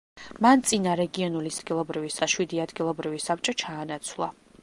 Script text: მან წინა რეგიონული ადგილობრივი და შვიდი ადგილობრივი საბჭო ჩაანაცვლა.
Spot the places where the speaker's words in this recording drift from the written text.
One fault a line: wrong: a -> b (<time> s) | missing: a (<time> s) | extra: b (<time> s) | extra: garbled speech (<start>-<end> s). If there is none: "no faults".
no faults